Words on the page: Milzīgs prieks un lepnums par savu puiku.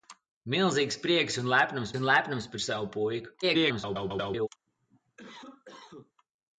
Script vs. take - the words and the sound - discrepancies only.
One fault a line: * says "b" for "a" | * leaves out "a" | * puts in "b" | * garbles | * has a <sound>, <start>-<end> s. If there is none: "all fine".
* puts in "un lepnums"
* garbles
* has a cough, 4.7-6.1 s